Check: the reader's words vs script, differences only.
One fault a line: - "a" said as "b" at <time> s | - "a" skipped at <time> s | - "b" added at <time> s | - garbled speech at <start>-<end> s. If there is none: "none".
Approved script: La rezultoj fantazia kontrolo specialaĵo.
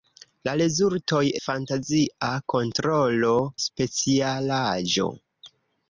none